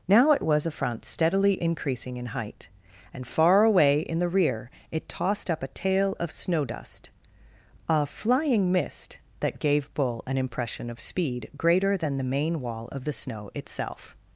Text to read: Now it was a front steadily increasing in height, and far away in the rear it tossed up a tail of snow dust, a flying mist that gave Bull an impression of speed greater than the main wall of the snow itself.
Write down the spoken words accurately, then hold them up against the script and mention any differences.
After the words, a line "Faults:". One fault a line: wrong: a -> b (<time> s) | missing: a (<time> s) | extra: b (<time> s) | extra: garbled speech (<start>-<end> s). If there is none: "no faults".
Now it was a front steadily increasing in height, and far away in the rear it tossed up a tail of snow dust, a flying mist that gave Bull an impression of speed greater than the main wall of the snow itself.
Faults:
no faults